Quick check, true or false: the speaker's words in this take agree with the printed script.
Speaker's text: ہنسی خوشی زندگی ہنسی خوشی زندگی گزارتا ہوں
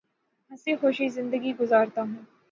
false